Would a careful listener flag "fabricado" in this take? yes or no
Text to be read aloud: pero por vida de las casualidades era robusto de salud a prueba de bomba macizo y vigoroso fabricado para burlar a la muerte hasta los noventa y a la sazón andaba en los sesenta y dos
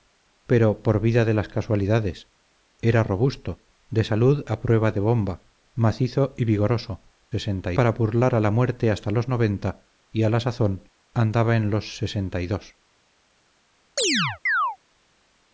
yes